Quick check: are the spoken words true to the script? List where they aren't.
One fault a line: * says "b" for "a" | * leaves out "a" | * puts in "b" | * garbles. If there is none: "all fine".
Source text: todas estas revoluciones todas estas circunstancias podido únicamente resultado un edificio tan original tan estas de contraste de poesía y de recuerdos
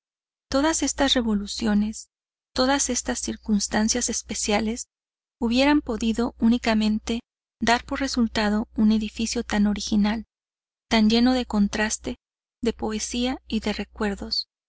* puts in "especiales hubieran"
* puts in "dar por"
* says "lleno" for "estas"